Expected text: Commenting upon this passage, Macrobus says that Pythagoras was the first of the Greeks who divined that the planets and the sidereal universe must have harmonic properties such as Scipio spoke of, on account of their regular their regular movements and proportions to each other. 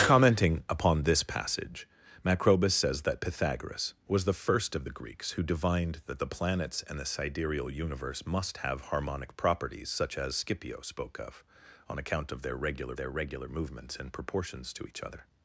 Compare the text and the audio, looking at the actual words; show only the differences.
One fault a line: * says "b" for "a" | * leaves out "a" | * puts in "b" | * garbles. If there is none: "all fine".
all fine